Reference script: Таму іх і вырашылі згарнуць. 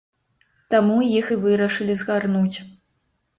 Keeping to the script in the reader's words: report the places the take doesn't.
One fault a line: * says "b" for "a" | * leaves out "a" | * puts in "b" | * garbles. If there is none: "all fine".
all fine